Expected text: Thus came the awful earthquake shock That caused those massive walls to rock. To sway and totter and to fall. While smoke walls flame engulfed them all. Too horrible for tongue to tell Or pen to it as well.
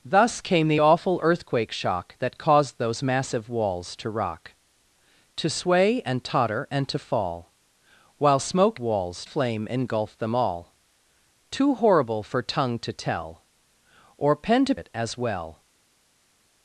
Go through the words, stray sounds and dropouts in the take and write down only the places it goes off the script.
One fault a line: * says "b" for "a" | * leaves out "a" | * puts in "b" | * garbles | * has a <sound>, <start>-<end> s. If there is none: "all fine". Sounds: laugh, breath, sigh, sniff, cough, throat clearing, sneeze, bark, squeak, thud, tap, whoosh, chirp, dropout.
all fine